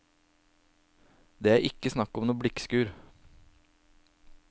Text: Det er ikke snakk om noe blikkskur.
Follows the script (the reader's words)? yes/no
yes